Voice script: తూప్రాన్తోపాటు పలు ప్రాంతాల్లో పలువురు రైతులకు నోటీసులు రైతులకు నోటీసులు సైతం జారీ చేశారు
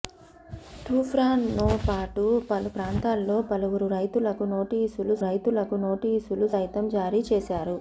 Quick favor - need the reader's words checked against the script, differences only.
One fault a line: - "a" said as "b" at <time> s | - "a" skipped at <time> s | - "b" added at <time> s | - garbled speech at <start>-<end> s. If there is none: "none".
none